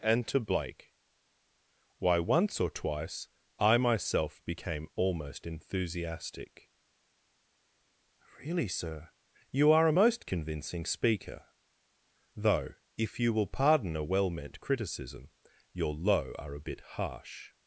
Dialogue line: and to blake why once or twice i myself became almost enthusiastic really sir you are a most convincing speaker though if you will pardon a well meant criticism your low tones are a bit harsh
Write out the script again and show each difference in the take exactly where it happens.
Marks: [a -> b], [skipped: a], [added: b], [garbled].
and to blake why once or twice i myself became almost enthusiastic really sir you are a most convincing speaker though if you will pardon a well meant criticism your low [skipped: tones] are a bit harsh